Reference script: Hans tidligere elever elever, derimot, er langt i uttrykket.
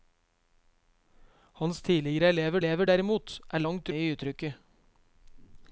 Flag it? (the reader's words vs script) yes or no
no